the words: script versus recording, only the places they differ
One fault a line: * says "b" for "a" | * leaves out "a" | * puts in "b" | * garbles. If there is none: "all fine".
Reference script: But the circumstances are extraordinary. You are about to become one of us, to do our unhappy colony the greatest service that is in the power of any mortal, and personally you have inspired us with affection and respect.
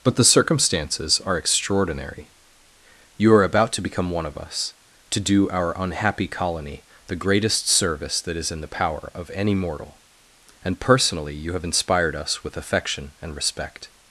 all fine